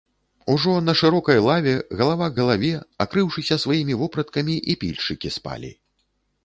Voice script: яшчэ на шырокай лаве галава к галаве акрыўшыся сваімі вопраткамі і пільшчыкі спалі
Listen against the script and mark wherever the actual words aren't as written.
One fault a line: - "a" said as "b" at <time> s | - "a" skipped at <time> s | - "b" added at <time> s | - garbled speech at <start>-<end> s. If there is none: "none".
- "яшчэ" said as "ужо" at 0.5 s